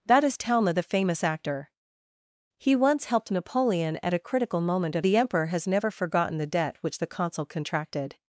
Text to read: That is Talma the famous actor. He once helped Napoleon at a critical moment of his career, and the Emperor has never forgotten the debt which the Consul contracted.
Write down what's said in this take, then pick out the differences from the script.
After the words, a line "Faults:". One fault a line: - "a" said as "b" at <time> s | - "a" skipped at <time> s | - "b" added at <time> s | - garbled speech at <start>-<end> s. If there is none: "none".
That is Talma the famous actor. He once helped Napoleon at a critical moment of the Emperor has never forgotten the debt which the Consul contracted.
Faults:
- "his career and" skipped at 5.0 s